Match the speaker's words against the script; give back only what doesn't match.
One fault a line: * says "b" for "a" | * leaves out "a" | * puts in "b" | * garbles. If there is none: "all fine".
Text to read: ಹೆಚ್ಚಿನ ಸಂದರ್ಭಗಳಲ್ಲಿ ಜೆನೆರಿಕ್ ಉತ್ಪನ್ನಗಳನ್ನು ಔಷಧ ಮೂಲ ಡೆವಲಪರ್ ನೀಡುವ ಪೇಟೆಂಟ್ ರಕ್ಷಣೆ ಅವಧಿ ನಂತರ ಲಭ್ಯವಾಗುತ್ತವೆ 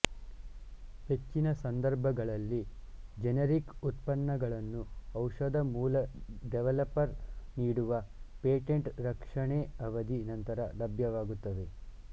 all fine